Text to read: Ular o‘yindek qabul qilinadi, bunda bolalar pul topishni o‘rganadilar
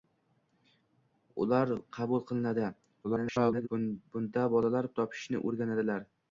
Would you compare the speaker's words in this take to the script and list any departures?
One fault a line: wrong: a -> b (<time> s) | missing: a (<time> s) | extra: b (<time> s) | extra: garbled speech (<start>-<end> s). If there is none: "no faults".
missing: o‘yindek (1.7 s)
extra: garbled speech (3.0-3.7 s)
missing: pul (4.9 s)